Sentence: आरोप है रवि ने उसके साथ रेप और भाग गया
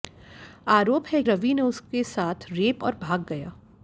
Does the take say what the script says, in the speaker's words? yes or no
yes